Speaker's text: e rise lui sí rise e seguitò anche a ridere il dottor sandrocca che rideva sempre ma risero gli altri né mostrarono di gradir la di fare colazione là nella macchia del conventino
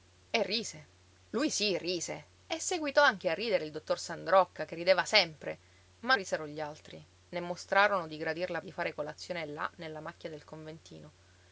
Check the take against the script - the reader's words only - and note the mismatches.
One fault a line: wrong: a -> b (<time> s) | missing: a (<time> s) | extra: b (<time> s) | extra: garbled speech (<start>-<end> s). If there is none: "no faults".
no faults